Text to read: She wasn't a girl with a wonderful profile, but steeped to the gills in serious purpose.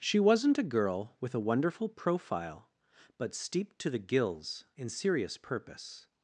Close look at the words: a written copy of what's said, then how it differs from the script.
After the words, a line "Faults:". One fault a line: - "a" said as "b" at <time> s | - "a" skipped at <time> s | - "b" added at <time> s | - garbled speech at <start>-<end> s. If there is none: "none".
She wasn't a girl with a wonderful profile, but steeped to the gills in serious purpose.
Faults:
none